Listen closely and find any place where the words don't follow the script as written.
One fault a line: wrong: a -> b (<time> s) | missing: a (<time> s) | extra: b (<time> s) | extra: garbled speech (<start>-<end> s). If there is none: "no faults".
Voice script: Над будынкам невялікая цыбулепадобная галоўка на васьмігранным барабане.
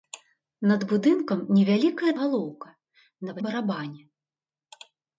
missing: цыбулепадобная (2.1 s)
missing: васьмігранным (3.4 s)